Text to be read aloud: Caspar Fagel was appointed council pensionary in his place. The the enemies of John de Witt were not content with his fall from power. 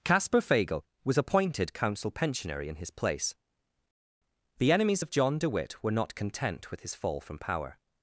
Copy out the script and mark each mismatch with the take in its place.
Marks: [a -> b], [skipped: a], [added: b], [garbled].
Caspar Fagel was appointed council pensionary in his place. The [skipped: the] enemies of John de Witt were not content with his fall from power.